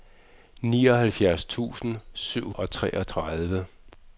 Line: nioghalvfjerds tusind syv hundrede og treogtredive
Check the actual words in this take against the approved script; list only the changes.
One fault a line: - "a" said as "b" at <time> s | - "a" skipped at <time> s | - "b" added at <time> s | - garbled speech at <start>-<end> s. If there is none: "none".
- "hundrede" skipped at 2.5 s